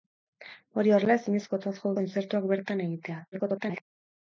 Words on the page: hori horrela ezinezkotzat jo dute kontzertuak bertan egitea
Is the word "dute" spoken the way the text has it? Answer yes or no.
no